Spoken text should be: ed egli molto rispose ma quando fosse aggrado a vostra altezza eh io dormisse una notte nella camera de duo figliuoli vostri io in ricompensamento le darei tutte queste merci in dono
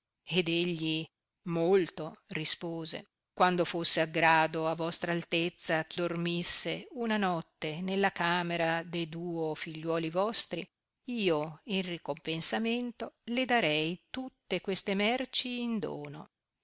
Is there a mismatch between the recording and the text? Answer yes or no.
yes